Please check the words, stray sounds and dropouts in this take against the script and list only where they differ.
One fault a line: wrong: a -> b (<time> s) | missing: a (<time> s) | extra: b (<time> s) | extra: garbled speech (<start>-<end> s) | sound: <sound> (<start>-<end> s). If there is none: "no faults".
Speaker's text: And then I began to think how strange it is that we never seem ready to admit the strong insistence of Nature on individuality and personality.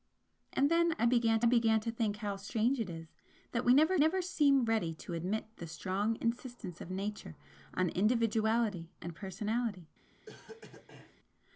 extra: began (1.5 s)
extra: never (4.0 s)
sound: cough (10.3-11.2 s)